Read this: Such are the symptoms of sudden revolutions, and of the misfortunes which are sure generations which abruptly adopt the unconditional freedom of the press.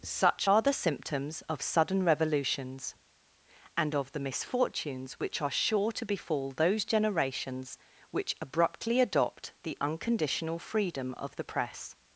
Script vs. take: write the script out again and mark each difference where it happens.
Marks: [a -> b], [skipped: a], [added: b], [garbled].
Such are the symptoms of sudden revolutions, and of the misfortunes which are sure [added: to befall those] generations which abruptly adopt the unconditional freedom of the press.